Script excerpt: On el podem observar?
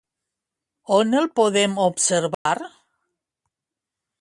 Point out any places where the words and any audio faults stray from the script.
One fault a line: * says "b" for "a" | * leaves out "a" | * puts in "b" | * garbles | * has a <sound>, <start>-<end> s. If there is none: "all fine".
* has a dropout, 2.3-2.5 s